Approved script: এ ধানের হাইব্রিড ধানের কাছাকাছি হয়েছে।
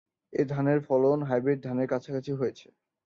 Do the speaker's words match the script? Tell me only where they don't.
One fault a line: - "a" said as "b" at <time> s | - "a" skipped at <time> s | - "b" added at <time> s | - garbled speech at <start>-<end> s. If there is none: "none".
- "ফলন" added at 0.9 s